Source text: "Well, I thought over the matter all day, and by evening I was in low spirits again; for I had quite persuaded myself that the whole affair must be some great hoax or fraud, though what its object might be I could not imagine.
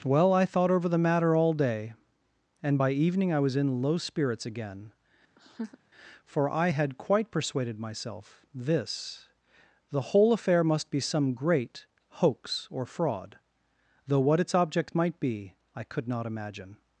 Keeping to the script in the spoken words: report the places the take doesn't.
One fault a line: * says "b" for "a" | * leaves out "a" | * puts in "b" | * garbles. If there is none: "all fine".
* says "this" for "that"